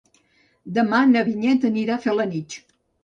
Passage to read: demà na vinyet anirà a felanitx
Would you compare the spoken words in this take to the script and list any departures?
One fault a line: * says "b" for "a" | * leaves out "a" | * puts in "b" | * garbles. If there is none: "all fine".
all fine